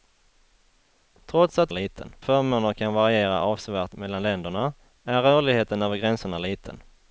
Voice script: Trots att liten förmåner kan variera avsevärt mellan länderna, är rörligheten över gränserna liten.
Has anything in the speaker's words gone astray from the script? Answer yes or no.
no